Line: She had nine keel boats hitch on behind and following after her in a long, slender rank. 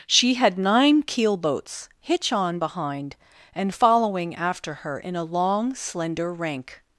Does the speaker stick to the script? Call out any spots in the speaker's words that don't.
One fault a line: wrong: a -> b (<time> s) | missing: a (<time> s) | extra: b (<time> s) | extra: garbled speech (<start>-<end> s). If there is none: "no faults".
no faults